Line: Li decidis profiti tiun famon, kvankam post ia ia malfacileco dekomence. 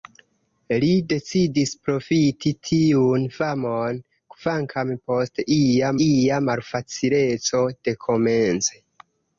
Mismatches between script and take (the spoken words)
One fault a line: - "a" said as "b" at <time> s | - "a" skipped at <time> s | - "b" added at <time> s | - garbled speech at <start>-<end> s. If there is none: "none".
none